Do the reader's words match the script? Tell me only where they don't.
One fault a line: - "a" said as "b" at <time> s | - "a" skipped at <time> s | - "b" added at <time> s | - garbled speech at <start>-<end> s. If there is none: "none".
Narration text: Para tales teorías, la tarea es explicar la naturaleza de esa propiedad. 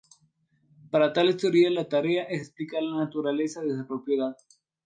none